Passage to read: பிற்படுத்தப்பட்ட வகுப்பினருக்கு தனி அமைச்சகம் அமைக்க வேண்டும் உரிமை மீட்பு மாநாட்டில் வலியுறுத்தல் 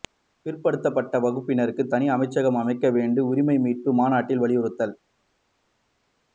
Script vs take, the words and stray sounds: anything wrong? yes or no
no